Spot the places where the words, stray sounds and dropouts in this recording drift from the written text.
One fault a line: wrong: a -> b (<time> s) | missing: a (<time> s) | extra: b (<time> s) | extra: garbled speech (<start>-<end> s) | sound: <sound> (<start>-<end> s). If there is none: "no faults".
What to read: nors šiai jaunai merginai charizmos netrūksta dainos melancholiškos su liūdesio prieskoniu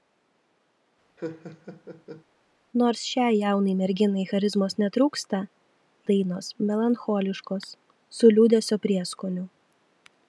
sound: laugh (1.2-2.2 s)